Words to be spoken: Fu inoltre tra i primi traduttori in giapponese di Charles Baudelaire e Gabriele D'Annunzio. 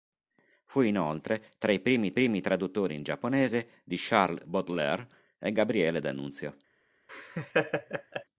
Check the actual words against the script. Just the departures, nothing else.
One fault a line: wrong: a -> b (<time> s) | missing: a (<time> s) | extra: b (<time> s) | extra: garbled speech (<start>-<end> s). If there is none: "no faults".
extra: primi (2.1 s)